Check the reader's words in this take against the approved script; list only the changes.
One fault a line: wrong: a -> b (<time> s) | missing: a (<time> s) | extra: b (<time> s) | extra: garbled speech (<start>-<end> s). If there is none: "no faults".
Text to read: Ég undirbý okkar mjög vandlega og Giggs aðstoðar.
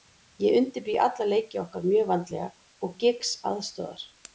extra: alla leiki (1.1 s)